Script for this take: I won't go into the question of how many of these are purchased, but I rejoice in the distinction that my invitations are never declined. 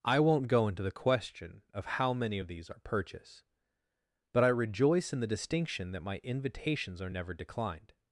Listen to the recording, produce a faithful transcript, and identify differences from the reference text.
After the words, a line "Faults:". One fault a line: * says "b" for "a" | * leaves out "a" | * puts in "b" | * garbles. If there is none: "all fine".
I won't go into the question of how many of these are purchase, but I rejoice in the distinction that my invitations are never declined.
Faults:
* says "purchase" for "purchased"